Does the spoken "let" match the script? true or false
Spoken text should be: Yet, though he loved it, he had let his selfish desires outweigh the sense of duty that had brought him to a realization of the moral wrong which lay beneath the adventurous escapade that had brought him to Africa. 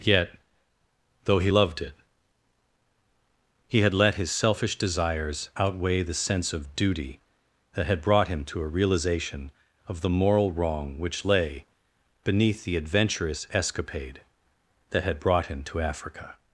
true